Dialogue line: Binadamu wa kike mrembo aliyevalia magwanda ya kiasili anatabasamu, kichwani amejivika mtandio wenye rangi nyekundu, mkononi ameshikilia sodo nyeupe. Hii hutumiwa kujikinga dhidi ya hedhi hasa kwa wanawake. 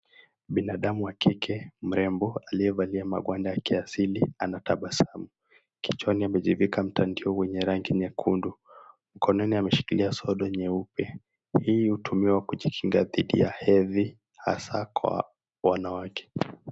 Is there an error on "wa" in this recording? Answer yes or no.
no